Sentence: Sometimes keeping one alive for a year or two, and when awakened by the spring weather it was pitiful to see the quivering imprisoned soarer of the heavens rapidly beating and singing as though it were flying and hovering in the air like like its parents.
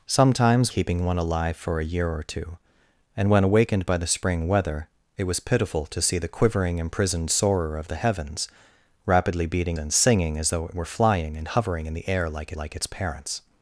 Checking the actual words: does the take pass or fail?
pass